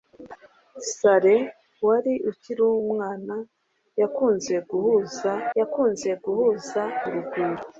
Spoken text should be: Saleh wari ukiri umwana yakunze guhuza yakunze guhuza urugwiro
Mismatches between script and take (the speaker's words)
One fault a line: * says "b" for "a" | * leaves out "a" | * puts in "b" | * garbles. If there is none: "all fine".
all fine